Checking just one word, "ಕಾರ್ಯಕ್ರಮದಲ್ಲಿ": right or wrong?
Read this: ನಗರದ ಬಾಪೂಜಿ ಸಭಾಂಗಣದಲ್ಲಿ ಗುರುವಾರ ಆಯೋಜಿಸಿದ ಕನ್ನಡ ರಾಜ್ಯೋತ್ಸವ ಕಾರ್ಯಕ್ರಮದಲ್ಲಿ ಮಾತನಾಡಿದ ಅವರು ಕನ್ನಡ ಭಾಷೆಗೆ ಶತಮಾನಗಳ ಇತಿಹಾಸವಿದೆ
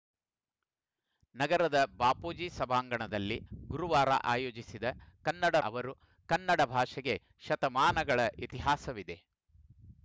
wrong